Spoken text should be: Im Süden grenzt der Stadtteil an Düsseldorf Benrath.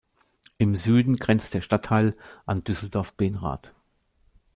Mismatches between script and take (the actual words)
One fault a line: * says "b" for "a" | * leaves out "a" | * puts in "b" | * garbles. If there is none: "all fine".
all fine